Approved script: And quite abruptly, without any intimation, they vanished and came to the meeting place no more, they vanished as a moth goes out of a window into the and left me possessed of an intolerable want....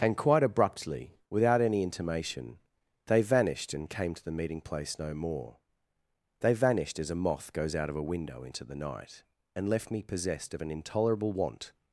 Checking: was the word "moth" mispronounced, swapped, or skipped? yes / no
no